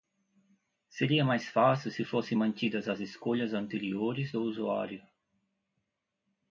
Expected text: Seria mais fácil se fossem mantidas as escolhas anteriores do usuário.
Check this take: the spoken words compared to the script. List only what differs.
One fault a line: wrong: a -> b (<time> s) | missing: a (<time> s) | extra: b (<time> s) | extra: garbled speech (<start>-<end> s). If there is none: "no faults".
no faults